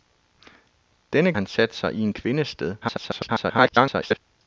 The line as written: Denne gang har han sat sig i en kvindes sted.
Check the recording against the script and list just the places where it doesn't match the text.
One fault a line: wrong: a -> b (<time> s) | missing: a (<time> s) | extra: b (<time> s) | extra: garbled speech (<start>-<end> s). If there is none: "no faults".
missing: gang har (1.3 s)
extra: garbled speech (2.8-4.2 s)